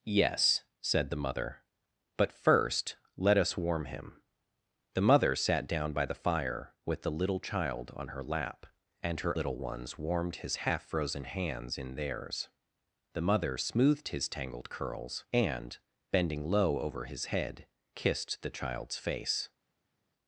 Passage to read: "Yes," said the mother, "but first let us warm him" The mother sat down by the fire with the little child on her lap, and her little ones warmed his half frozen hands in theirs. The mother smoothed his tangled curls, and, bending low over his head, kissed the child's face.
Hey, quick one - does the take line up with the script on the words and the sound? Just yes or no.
yes